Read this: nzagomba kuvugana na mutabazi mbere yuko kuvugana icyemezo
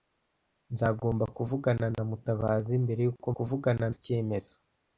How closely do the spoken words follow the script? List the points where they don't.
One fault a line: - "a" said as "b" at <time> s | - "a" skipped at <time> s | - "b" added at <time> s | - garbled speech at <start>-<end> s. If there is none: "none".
none